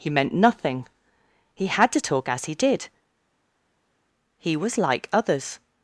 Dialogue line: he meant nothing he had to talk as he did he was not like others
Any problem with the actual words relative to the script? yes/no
yes